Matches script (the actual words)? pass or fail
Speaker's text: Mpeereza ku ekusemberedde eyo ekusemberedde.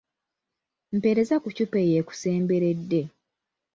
fail